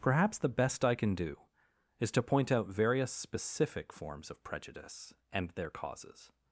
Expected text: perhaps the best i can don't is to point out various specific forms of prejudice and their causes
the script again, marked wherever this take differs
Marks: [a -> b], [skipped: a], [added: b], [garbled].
perhaps the best i can [don't -> do] is to point out various specific forms of prejudice and their causes